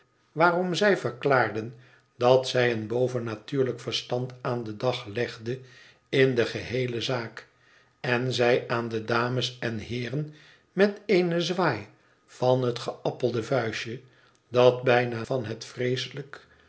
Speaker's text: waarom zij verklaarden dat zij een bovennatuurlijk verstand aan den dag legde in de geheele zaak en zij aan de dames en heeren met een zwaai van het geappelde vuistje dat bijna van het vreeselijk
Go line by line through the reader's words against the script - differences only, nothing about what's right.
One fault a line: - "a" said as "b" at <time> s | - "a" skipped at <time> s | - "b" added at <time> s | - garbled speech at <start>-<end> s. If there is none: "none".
none